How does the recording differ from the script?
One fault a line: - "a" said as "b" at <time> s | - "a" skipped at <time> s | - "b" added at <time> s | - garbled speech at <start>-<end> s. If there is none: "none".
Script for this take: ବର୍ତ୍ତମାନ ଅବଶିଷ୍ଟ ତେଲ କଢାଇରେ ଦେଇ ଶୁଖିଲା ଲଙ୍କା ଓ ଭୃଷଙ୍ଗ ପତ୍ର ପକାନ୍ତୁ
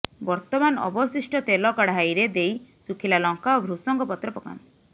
none